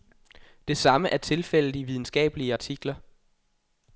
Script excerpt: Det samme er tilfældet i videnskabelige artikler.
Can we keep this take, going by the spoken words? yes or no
yes